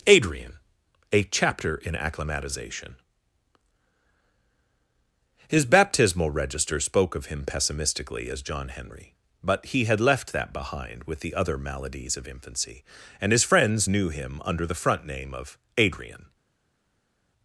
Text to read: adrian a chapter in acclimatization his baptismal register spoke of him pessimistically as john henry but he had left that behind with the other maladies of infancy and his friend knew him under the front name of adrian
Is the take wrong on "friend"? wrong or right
wrong